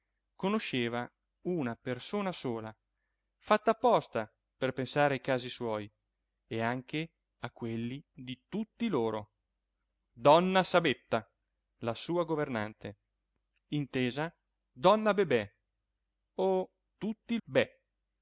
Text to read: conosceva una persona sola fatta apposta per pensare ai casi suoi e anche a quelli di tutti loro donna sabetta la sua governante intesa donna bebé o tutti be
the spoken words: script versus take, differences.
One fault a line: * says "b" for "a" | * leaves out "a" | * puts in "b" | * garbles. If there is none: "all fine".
all fine